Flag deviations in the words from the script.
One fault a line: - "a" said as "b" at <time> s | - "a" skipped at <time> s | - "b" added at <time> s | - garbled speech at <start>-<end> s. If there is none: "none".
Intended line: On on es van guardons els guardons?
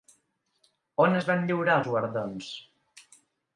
- "on" skipped at 1.2 s
- "guardons" said as "lliurar" at 1.5 s